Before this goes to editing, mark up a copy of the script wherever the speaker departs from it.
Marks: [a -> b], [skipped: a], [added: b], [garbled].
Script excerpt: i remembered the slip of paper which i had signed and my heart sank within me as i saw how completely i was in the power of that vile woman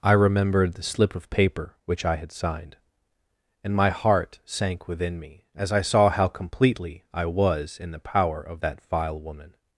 i remembered the slip of paper which i had signed and my heart sank within me as i saw how completely i was in the power of that vile woman